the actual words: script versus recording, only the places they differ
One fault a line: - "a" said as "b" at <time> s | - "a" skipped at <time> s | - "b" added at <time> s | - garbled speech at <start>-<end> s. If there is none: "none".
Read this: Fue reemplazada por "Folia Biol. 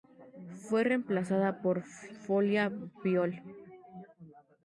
none